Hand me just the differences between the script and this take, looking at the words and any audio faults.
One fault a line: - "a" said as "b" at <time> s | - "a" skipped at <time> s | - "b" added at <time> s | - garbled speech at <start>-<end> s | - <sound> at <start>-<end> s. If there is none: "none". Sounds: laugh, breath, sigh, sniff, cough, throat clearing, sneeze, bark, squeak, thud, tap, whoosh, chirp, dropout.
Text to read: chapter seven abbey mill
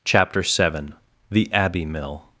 - "the" added at 1.3 s